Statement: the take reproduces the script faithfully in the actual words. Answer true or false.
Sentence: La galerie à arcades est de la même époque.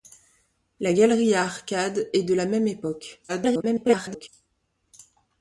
false